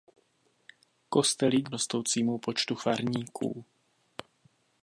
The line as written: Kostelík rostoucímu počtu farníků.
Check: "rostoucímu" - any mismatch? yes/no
no